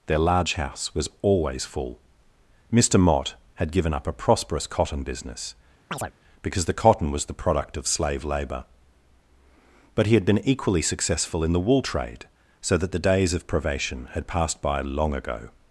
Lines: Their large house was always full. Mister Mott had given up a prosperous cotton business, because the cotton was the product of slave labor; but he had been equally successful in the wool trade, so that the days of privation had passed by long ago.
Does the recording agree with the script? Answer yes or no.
yes